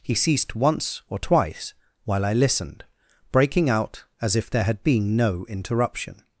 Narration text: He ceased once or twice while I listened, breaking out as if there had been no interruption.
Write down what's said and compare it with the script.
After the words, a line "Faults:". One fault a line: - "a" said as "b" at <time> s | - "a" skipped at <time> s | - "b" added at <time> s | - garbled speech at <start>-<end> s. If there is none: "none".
He ceased once or twice while I listened, breaking out as if there had been no interruption.
Faults:
none